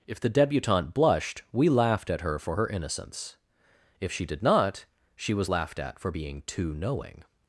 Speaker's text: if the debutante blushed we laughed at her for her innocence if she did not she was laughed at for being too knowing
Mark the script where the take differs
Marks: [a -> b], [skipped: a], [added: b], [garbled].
if the debutante blushed we laughed at her for her innocence if she did not she was laughed at for being too knowing